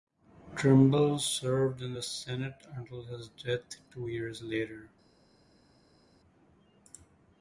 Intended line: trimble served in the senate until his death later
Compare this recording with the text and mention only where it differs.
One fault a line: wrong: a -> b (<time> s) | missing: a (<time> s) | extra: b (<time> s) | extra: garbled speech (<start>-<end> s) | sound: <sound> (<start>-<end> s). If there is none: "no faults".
extra: two years (3.9 s)